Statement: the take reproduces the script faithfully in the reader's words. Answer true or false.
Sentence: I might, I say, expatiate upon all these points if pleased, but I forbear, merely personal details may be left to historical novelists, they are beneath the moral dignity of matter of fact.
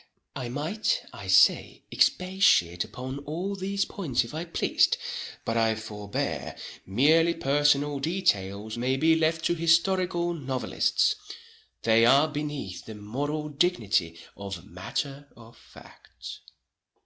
false